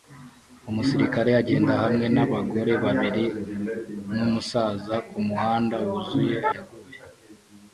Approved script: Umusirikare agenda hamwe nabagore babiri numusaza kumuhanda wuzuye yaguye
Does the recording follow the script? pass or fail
pass